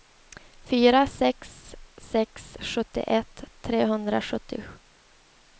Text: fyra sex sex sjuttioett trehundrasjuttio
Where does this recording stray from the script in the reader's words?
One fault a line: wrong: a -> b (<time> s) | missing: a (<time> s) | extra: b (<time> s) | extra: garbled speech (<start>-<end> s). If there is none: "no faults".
no faults